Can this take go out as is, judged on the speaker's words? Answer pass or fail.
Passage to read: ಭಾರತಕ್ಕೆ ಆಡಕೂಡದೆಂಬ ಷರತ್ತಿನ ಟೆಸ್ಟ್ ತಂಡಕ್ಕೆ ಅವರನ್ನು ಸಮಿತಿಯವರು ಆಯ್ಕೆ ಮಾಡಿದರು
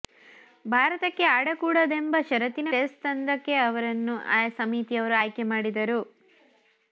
pass